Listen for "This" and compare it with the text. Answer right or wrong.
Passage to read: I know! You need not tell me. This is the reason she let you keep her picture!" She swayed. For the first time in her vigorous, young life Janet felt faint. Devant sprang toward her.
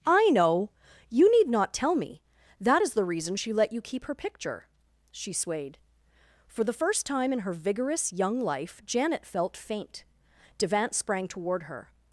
wrong